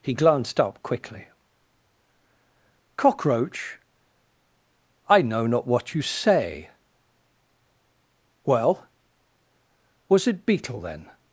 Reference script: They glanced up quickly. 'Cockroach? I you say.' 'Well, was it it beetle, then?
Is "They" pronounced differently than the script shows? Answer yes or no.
yes